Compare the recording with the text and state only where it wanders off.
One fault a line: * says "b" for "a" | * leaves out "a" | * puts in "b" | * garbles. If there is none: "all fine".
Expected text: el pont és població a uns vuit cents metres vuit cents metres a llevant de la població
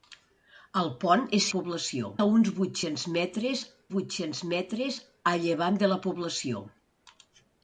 all fine